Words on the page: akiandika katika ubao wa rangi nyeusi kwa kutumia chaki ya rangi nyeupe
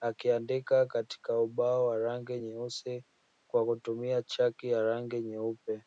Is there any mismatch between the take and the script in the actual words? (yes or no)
no